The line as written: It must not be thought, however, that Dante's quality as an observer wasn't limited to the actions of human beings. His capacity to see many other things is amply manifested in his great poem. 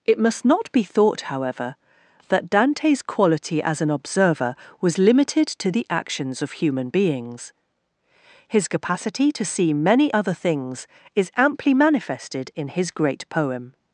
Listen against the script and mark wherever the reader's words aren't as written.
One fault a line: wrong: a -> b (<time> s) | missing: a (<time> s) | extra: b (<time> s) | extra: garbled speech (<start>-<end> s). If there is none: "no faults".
wrong: wasn't -> was (4.8 s)